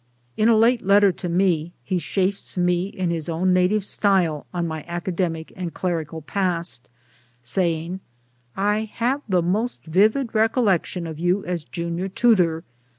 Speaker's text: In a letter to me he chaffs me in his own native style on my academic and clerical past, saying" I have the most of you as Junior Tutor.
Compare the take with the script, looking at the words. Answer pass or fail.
fail